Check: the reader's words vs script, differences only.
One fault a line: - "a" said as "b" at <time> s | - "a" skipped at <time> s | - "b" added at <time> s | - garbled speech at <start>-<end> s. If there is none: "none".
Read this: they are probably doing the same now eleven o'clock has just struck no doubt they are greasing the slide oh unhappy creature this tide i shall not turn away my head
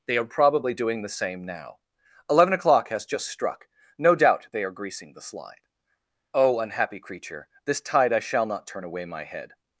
none